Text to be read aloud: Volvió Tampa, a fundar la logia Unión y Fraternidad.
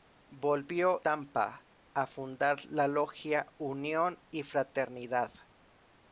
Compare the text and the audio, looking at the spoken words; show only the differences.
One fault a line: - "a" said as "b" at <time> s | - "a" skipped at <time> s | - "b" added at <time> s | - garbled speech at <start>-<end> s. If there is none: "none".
none